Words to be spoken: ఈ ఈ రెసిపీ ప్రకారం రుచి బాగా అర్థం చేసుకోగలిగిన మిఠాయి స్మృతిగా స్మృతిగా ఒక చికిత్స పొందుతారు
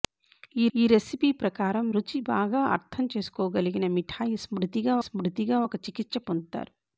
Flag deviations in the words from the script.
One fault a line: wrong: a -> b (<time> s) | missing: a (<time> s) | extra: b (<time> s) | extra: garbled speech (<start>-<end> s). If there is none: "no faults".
no faults